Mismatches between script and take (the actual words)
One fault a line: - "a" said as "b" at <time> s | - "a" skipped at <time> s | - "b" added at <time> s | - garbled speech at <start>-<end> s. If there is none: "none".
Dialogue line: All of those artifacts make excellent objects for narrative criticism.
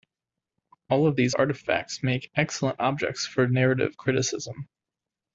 - "those" said as "these" at 1.2 s